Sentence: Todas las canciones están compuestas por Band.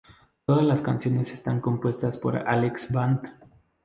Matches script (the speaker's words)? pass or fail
fail